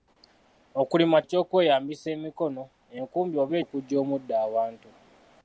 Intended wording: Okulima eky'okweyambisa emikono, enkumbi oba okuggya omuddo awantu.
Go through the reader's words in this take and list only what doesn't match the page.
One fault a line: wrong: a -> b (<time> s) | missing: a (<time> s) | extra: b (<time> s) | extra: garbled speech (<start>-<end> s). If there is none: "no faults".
no faults